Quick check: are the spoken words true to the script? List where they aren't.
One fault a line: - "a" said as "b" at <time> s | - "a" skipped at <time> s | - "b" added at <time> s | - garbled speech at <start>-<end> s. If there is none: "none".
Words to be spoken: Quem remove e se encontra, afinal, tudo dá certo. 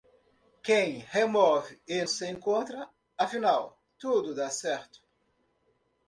none